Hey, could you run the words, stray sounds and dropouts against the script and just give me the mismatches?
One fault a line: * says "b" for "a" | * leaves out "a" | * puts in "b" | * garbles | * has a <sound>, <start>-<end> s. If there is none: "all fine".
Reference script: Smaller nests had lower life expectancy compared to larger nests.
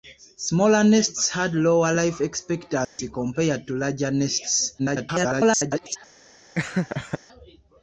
* has a dropout, 2.8-3.0 s
* garbles
* has a laugh, 6.6-7.2 s